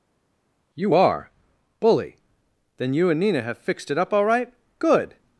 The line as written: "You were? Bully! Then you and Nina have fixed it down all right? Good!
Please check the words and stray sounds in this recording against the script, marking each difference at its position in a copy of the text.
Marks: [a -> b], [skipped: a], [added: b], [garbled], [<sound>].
"You [were? -> are] Bully! Then you and Nina have fixed it [down -> up] all right? Good!